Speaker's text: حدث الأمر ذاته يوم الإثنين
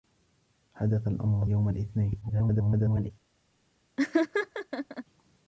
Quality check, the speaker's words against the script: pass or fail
fail